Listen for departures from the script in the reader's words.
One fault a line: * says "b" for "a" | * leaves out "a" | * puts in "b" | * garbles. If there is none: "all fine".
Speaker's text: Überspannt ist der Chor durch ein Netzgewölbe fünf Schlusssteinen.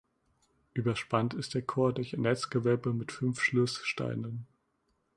* puts in "mit"